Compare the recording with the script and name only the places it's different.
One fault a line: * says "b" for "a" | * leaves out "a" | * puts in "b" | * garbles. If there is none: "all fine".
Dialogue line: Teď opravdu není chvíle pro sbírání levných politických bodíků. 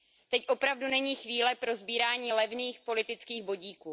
all fine